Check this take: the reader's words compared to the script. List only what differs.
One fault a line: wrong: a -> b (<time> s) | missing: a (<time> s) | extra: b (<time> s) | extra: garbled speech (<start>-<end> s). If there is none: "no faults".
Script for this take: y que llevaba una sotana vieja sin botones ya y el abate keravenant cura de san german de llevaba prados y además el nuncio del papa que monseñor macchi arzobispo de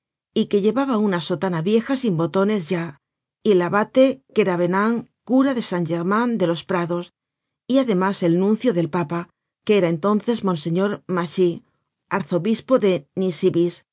wrong: llevaba -> los (6.5 s)
extra: era entonces (9.8 s)